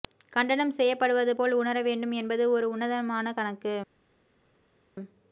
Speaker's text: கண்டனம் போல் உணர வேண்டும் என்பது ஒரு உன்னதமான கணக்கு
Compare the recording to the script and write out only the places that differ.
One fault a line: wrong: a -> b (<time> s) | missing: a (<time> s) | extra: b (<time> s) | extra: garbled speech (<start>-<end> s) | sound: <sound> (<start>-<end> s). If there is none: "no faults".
extra: செய்யப்படுவது (0.7 s)